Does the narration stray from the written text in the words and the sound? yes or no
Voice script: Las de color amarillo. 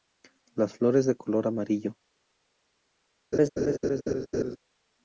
yes